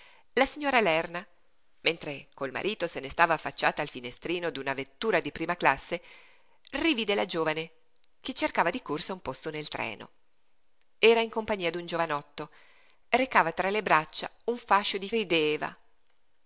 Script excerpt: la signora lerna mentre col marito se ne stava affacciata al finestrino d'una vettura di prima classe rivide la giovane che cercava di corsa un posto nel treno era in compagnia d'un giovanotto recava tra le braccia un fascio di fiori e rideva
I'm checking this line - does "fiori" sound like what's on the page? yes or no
no